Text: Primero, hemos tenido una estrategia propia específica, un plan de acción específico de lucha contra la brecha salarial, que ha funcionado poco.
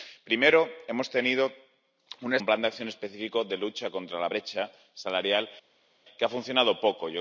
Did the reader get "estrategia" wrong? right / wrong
wrong